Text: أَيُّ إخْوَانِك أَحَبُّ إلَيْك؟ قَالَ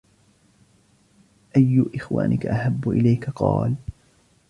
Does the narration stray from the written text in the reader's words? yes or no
no